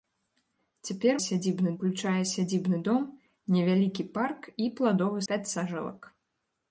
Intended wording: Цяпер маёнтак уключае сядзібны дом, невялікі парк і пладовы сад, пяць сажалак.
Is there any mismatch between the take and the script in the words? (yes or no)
yes